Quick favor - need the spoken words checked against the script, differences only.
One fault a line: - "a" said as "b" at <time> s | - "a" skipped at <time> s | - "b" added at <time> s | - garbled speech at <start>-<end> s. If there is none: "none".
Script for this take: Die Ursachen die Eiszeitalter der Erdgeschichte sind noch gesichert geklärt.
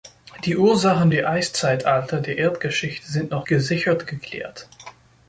none